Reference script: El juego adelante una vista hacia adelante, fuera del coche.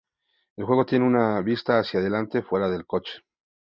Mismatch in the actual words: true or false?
true